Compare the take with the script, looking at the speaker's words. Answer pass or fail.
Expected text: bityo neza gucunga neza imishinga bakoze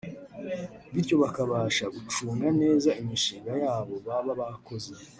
fail